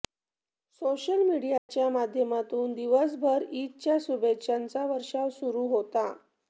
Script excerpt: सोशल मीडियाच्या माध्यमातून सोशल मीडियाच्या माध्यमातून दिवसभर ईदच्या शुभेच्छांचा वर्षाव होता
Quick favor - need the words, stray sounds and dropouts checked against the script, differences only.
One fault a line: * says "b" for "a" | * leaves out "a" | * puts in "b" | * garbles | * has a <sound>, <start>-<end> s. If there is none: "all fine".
* has a dropout, 1.6-1.7 s
* leaves out "सोशल मीडियाच्या माध्यमातून"
* puts in "सुरू"